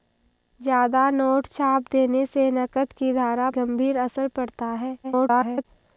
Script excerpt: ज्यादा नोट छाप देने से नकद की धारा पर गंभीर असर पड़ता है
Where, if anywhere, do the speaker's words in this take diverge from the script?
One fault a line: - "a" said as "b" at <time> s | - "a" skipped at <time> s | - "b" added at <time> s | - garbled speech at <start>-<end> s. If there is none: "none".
- "पर" skipped at 3.5 s
- garbled speech at 5.0-5.6 s